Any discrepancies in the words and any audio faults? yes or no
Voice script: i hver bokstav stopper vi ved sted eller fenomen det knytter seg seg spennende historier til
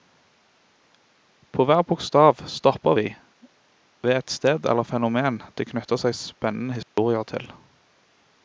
yes